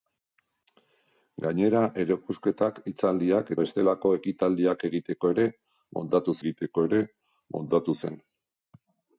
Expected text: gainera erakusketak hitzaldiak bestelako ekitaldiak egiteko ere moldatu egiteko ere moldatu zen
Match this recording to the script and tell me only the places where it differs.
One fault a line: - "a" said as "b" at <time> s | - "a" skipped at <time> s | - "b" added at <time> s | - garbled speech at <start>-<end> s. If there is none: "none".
none